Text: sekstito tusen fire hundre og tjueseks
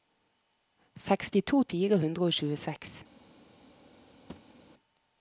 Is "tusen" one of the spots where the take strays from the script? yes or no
yes